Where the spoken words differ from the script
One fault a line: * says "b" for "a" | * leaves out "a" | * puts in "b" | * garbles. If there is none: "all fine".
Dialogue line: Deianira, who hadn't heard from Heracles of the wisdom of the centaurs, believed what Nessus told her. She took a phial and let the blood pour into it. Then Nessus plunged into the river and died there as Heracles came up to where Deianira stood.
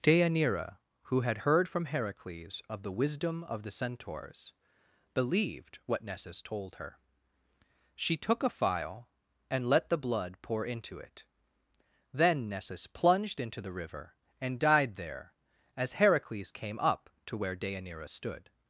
* says "had" for "hadn't"